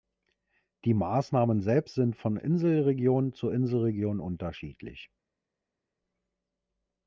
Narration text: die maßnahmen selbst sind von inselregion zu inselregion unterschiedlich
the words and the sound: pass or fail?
pass